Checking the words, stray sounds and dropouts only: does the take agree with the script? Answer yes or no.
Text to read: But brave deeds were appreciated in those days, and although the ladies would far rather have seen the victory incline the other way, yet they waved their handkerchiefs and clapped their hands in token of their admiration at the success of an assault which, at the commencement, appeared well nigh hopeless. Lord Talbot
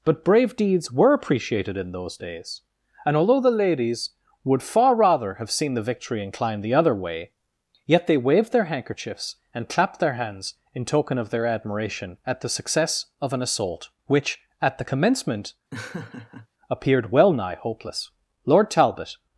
no